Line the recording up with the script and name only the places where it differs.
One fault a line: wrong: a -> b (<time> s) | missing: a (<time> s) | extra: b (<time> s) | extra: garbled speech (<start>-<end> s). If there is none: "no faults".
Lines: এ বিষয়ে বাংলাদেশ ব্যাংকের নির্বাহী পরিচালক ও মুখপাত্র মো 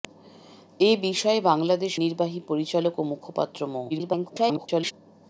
missing: ব্যাংকের (1.9 s)
extra: garbled speech (3.9-4.9 s)